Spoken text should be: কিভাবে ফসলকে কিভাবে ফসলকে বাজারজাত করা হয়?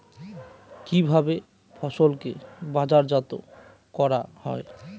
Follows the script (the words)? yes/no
no